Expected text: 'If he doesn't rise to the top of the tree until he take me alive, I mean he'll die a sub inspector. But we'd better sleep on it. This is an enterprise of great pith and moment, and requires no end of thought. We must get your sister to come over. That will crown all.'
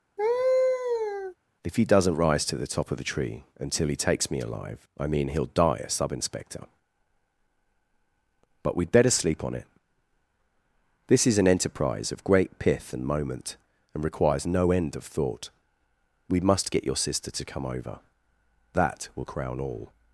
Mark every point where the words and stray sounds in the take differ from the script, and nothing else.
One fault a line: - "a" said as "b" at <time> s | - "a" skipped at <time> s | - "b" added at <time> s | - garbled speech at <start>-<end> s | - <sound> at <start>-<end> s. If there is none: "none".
- laugh at 0.2-1.4 s
- "take" said as "takes" at 4.0 s